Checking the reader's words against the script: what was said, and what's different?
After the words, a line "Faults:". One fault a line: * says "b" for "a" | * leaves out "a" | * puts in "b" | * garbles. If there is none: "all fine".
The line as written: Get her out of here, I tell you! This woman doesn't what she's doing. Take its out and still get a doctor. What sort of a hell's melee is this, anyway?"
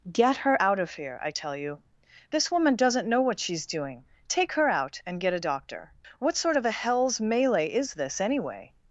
Get her out of here, I tell you! This woman doesn't know what she's doing. Take her out and get a doctor. What sort of a hell's melee is this, anyway?"
Faults:
* puts in "know"
* says "her" for "its"
* leaves out "still"